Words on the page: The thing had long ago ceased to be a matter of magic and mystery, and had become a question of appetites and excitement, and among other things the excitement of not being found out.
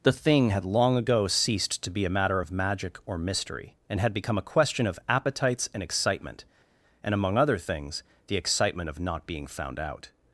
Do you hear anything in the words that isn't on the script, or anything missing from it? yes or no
yes